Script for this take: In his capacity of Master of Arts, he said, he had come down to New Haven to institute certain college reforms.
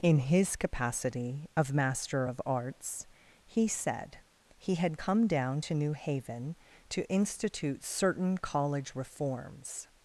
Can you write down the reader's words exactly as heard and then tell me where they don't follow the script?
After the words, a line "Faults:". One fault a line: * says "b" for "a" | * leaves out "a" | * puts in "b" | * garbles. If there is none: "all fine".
In his capacity of Master of Arts, he said, he had come down to New Haven to institute certain college reforms.
Faults:
all fine